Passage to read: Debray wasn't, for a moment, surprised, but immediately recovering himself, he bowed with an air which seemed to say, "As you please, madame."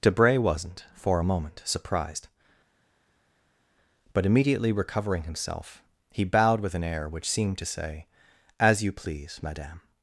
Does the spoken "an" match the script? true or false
true